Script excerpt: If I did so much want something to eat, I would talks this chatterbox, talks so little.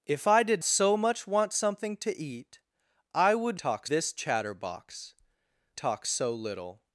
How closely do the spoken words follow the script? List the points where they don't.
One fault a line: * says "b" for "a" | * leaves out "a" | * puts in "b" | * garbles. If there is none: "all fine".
all fine